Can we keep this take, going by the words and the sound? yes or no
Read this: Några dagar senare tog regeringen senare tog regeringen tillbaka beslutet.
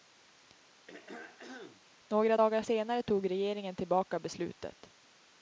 no